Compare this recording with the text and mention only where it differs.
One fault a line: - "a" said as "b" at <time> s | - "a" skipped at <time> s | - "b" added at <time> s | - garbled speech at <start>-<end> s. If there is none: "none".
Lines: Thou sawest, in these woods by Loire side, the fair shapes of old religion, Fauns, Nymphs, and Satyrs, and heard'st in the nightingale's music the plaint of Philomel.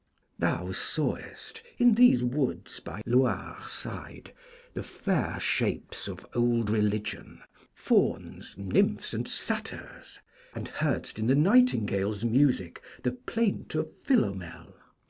none